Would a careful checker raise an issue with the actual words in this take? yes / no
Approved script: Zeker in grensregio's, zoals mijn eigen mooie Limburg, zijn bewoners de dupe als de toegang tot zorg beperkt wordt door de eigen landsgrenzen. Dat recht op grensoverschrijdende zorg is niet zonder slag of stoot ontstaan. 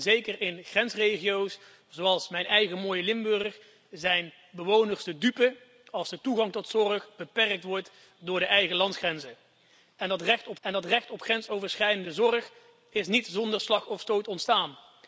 yes